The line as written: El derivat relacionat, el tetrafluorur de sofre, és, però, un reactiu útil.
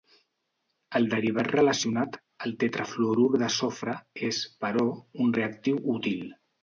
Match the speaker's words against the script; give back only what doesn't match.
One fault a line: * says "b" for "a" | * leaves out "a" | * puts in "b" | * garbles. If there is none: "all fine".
all fine